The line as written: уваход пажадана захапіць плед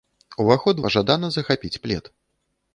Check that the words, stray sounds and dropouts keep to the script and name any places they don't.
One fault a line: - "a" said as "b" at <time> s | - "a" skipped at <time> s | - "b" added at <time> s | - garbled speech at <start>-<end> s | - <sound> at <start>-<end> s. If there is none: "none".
none